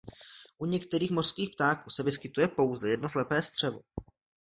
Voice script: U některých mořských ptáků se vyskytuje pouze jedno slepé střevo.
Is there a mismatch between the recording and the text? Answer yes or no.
no